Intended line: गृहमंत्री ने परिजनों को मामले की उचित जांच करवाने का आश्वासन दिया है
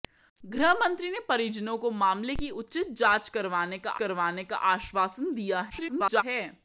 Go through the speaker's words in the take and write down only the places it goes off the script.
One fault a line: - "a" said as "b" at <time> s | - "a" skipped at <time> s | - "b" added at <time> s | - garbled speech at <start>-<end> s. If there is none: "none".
- "करवाने का" added at 3.9 s
- garbled speech at 5.7-6.2 s